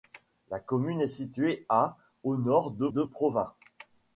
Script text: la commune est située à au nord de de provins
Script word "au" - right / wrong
right